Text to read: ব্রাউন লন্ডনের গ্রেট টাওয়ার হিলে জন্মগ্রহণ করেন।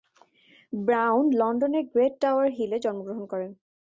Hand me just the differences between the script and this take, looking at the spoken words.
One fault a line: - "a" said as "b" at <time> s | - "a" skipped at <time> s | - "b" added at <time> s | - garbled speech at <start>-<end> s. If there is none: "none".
none